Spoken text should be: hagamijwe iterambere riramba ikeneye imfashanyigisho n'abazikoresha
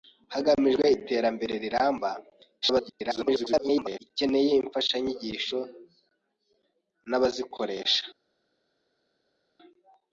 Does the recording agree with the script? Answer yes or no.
no